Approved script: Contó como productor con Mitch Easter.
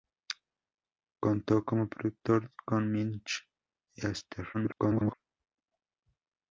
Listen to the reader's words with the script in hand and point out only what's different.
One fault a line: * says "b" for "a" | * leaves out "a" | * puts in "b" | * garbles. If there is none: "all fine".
* garbles